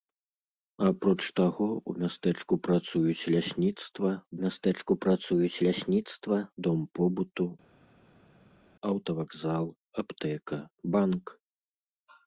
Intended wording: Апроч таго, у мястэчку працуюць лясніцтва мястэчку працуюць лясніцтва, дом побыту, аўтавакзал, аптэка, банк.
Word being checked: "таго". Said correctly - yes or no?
yes